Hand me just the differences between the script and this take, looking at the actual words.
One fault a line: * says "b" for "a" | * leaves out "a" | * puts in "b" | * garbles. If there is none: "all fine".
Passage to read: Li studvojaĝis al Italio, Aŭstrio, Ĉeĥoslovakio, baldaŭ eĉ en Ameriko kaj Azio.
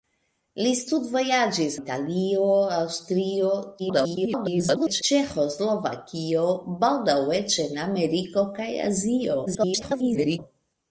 * leaves out "al"
* garbles
* garbles